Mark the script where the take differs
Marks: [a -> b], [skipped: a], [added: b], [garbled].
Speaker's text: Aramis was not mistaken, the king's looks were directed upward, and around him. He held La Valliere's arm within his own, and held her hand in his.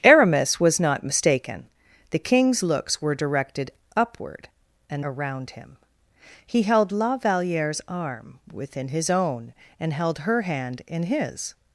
Aramis was not mistaken, the king's looks were directed upward, and around him. He held La Valliere's arm within his own, and held her hand in his.